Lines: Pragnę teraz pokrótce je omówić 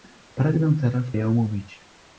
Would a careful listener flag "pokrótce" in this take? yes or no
yes